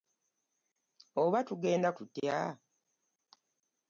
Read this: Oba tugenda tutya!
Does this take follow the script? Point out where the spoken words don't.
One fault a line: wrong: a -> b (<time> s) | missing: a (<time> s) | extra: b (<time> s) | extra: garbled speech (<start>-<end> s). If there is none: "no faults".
no faults